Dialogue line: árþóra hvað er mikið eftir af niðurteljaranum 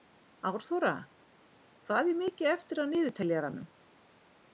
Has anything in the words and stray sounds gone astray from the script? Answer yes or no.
no